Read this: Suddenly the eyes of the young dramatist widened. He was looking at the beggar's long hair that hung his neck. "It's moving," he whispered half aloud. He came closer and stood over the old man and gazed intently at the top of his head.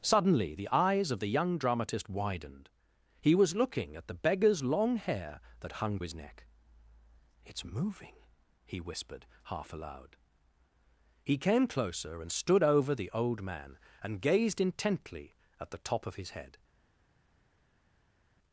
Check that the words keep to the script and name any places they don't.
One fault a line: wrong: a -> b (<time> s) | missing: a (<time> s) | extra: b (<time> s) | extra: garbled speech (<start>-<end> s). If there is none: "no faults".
no faults